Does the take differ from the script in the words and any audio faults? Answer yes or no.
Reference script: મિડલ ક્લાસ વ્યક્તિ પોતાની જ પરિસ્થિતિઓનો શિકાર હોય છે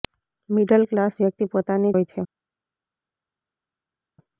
yes